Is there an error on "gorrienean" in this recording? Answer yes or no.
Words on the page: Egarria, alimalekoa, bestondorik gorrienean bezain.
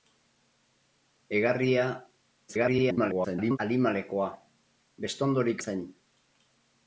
yes